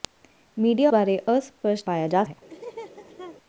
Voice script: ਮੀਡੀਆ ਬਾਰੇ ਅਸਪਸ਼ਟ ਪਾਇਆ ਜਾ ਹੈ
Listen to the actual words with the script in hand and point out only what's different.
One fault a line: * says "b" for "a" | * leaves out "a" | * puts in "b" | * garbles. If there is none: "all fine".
all fine